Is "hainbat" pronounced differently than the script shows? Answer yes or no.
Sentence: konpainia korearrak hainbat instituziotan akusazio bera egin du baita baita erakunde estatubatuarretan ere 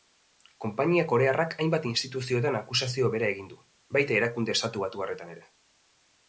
no